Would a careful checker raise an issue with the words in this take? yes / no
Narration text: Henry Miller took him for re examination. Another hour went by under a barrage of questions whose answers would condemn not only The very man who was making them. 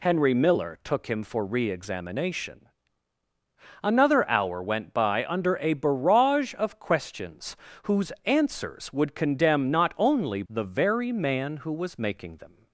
no